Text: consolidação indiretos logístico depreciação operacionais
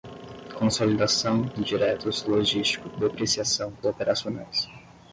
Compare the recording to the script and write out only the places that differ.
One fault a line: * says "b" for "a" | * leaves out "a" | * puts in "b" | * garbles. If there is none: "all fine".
all fine